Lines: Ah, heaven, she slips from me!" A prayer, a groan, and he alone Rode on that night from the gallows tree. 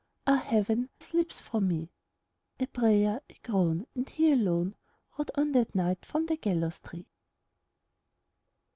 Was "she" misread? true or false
true